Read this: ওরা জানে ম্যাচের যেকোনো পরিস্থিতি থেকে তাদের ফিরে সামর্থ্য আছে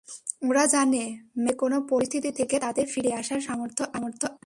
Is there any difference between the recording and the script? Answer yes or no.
yes